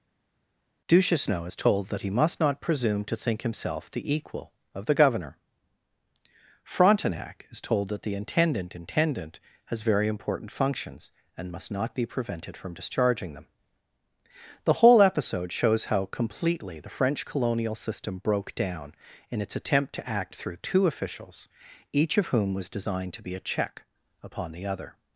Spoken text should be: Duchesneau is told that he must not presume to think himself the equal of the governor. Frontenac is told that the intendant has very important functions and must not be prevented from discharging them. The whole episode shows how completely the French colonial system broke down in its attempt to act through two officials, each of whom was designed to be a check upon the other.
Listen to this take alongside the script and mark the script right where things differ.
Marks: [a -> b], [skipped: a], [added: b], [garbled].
Duchesneau is told that he must not presume to think himself the equal of the governor. Frontenac is told that the intendant [added: intendant] has very important functions and must not be prevented from discharging them. The whole episode shows how completely the French colonial system broke down in its attempt to act through two officials, each of whom was designed to be a check upon the other.